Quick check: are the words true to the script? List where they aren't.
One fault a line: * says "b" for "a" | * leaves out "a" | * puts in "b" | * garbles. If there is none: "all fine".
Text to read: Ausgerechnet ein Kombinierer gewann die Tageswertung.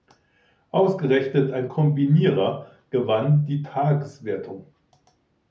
all fine